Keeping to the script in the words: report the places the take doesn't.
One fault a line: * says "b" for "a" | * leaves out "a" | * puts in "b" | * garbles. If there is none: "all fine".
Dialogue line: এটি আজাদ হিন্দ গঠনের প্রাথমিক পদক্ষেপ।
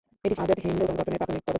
all fine